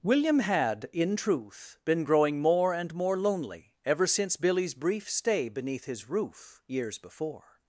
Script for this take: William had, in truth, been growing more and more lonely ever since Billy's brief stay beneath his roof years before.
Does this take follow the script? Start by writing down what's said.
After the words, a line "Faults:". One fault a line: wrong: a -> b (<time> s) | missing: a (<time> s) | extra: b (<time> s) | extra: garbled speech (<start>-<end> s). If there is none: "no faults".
William had, in truth, been growing more and more lonely ever since Billy's brief stay beneath his roof years before.
Faults:
no faults